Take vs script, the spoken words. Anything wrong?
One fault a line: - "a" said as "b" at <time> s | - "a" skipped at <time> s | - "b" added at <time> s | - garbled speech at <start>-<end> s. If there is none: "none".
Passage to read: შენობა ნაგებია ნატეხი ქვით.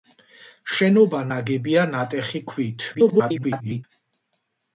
- garbled speech at 2.9-3.8 s